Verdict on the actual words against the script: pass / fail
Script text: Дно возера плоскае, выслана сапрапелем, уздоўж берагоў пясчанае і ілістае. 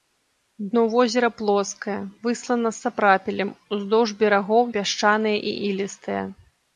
pass